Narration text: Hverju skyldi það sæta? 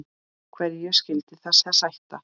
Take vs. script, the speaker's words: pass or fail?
fail